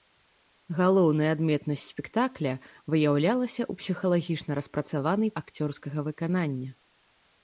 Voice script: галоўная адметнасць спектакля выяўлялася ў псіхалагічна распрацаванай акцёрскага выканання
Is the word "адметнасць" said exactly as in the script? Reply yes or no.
yes